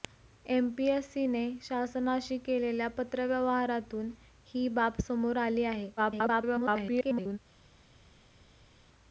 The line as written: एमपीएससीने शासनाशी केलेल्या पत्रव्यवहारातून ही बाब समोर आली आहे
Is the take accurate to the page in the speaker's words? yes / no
no